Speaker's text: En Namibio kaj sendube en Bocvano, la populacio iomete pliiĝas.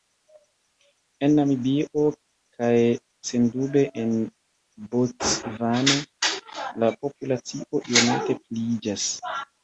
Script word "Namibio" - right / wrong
right